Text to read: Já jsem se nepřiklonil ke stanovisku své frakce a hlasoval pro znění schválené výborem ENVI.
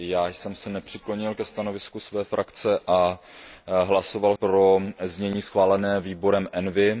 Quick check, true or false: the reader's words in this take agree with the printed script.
true